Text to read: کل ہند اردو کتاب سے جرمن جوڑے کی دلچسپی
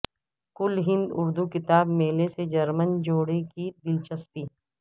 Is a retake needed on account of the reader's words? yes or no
yes